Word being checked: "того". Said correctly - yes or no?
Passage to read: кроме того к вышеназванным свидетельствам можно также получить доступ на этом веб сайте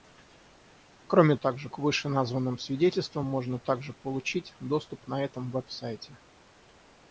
no